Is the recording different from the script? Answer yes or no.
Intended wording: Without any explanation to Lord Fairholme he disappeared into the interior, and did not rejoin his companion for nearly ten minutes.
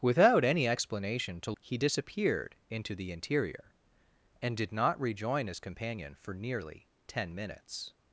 yes